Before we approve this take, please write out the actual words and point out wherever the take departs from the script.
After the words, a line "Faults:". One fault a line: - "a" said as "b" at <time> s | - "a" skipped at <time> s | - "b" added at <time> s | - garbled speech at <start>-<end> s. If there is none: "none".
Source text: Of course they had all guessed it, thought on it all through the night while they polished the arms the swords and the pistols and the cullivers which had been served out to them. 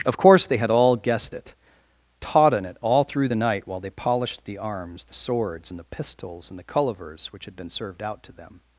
Of course they had all guessed it, taught on it all through the night while they polished the arms the swords and the pistols and the cullivers which had been served out to them.
Faults:
- "thought" said as "taught" at 2.2 s